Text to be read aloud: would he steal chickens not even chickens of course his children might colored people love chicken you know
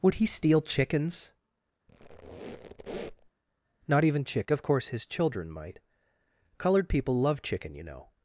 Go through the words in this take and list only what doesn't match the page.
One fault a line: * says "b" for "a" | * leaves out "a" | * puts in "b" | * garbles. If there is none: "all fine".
* says "chick" for "chickens"